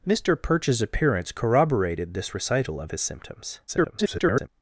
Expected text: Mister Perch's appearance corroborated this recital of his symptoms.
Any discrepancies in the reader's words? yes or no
yes